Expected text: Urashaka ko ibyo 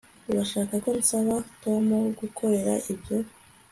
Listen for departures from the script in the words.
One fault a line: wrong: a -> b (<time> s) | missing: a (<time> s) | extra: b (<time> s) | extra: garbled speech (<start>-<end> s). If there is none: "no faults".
extra: nsaba Tom kugukorera (1.0 s)